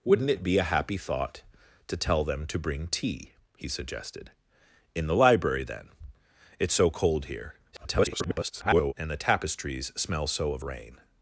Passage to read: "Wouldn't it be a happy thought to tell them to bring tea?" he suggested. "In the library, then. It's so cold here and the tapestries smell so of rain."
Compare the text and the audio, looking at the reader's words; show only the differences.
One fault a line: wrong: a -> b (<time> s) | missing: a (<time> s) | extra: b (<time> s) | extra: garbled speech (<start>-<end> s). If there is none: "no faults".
extra: garbled speech (7.7-8.9 s)